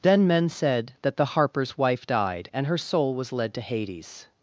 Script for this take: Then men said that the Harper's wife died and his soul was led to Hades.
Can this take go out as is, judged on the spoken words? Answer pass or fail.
fail